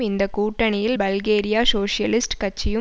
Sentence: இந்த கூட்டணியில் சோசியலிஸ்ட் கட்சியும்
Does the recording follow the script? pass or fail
fail